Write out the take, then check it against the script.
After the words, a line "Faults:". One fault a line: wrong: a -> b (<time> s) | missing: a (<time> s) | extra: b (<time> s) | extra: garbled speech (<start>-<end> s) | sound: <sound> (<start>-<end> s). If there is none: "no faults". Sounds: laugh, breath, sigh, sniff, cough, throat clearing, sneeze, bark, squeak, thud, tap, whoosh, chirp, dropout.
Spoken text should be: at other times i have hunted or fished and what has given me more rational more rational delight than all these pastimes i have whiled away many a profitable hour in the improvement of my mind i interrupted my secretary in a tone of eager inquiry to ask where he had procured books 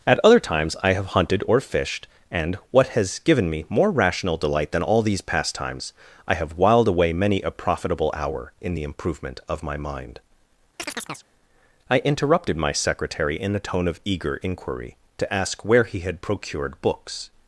at other times i have hunted or fished and what has given me more rational delight than all these pastimes i have whiled away many a profitable hour in the improvement of my mind i interrupted my secretary in a tone of eager inquiry to ask where he had procured books
Faults:
missing: more rational (4.4 s)
sound: chirp (10.8-11.3 s)